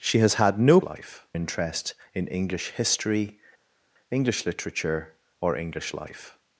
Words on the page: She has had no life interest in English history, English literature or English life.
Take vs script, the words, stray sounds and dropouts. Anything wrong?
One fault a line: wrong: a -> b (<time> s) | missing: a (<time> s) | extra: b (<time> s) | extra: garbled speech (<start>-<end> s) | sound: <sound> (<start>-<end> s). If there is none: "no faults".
no faults